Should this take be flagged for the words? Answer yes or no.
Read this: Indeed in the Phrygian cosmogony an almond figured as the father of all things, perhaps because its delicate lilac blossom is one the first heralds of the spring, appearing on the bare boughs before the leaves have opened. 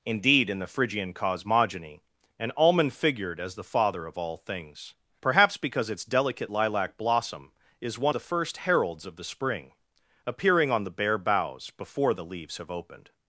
no